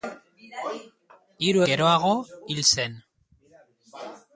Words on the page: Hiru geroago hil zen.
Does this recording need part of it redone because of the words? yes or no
no